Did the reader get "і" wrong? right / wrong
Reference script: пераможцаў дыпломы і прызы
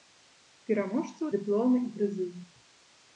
right